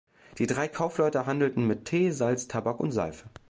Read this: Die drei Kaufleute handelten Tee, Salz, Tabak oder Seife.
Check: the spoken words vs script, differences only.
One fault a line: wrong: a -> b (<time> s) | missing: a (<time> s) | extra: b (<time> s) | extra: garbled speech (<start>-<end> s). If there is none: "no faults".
extra: mit (1.7 s)
wrong: oder -> und (2.8 s)